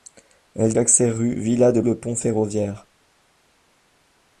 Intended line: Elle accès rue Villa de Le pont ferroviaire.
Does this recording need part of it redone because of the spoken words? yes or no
no